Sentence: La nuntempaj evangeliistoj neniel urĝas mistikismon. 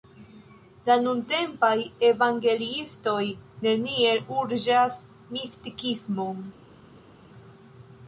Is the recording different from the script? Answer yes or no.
no